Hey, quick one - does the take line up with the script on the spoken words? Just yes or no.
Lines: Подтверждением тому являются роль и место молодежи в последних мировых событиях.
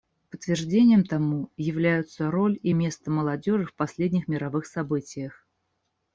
yes